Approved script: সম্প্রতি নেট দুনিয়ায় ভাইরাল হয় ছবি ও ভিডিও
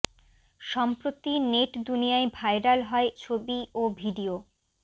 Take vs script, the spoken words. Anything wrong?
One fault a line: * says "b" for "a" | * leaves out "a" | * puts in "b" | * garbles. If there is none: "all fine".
all fine